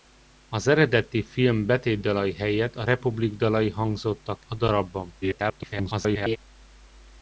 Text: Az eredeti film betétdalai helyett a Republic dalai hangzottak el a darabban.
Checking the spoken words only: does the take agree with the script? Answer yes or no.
no